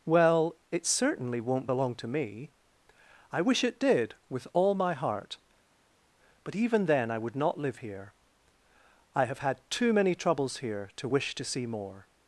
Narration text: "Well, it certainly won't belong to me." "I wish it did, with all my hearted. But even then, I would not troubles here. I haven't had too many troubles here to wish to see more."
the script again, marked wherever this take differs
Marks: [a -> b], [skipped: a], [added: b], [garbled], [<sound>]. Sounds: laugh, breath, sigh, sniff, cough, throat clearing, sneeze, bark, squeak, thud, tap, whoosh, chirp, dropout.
"Well, it certainly won't belong to me." "I wish it did, with all my [hearted. -> heart] But even then, I would not [troubles -> live] here. I [haven't -> have] had too many troubles here to wish to see more."